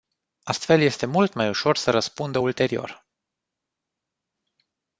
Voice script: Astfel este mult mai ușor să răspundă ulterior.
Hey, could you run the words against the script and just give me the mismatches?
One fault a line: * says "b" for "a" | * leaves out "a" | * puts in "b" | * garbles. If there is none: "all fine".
all fine